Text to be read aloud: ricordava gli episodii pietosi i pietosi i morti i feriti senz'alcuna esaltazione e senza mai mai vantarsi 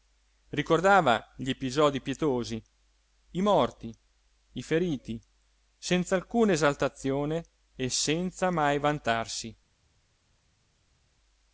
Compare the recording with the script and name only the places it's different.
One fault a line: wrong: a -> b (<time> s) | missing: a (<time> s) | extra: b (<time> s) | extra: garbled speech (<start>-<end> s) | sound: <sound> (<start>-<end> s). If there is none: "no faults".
missing: pietosi i (3.4 s)
missing: mai (8.8 s)